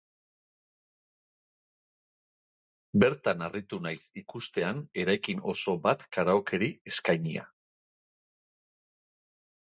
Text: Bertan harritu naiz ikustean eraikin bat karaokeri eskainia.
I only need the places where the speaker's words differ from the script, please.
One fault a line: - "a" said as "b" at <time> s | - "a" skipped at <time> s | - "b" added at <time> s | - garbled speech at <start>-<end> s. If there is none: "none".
- "oso" added at 5.5 s